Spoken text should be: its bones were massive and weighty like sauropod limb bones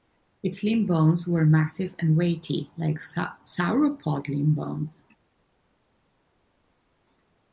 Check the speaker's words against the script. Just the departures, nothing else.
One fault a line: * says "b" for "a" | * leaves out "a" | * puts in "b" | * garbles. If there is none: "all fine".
* puts in "limb"